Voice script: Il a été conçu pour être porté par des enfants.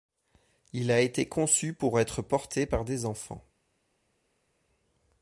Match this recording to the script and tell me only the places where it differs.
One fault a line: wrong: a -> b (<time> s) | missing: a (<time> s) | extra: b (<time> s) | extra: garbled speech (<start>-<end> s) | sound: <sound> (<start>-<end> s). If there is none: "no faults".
no faults